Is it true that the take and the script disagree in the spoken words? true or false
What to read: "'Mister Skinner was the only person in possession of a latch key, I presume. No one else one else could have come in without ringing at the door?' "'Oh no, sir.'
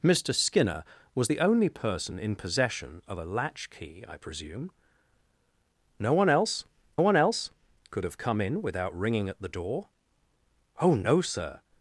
false